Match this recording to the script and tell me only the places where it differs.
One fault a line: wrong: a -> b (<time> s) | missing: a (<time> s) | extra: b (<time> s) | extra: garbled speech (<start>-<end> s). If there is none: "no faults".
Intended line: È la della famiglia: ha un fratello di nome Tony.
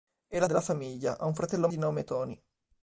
no faults